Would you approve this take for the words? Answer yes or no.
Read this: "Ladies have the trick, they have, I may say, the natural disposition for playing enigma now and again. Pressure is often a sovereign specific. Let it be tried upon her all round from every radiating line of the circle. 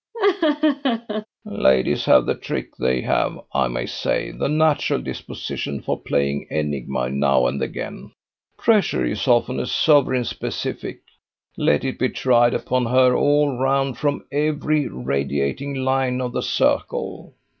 yes